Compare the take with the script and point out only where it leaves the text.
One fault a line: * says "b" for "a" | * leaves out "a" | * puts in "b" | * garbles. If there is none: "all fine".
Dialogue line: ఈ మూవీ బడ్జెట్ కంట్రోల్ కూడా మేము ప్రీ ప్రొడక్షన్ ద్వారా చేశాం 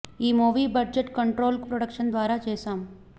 * leaves out "కూడా మేము ప్రీ"